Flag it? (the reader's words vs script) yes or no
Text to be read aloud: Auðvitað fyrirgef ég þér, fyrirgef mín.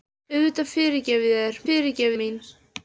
no